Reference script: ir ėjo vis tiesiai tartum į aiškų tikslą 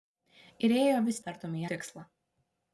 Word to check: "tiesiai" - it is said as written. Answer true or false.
false